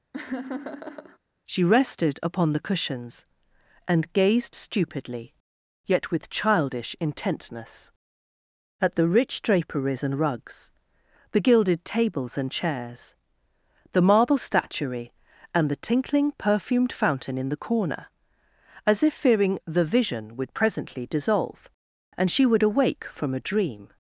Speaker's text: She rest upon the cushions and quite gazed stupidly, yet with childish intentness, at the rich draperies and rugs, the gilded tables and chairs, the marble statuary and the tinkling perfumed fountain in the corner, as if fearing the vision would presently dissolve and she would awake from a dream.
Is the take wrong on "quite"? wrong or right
wrong